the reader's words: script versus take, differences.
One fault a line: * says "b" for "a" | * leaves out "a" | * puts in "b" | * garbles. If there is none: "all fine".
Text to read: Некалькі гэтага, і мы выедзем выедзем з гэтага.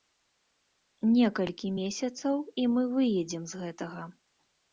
* says "месяцаў" for "гэтага"
* leaves out "выедзем"